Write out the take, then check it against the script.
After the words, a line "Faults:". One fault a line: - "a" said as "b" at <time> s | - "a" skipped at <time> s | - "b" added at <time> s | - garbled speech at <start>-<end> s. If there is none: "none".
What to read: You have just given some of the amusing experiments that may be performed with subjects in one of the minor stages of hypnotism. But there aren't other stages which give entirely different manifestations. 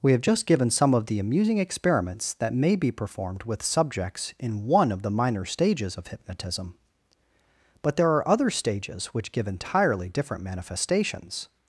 We have just given some of the amusing experiments that may be performed with subjects in one of the minor stages of hypnotism. But there are other stages which give entirely different manifestations.
Faults:
- "You" said as "We" at 0.0 s
- "aren't" said as "are" at 8.1 s